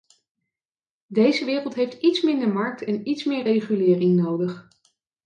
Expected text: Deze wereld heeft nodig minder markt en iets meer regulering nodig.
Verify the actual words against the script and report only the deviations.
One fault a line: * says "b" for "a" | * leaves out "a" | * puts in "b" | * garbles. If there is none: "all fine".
* says "iets" for "nodig"